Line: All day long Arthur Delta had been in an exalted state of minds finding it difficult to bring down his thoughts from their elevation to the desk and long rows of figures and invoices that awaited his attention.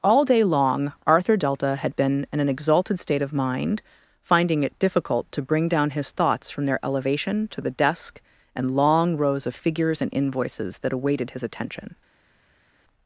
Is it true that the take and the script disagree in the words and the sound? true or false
true